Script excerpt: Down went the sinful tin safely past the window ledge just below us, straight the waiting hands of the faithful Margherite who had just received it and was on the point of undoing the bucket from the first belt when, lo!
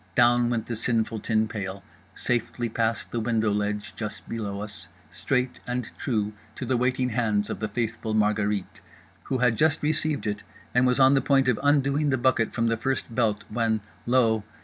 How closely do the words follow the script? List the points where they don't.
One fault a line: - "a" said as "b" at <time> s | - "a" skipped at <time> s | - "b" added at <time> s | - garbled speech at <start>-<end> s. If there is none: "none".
- "pail" added at 1.5 s
- "and true to" added at 5.7 s